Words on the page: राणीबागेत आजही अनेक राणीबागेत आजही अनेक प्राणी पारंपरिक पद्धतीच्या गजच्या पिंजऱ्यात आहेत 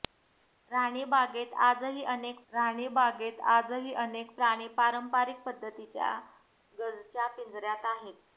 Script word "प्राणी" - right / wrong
right